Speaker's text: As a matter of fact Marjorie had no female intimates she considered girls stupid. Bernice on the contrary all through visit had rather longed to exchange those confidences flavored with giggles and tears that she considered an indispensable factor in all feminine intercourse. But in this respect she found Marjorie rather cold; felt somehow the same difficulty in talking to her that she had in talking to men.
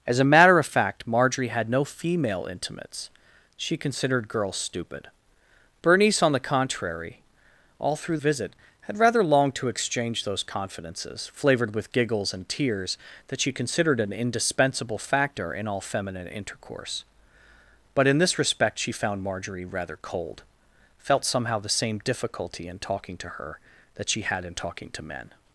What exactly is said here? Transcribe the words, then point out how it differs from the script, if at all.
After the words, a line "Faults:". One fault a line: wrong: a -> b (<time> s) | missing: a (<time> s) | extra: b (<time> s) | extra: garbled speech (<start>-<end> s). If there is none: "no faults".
As a matter of fact Marjorie had no female intimates she considered girls stupid. Bernice on the contrary all through visit had rather longed to exchange those confidences flavored with giggles and tears that she considered an indispensable factor in all feminine intercourse. But in this respect she found Marjorie rather cold; felt somehow the same difficulty in talking to her that she had in talking to men.
Faults:
no faults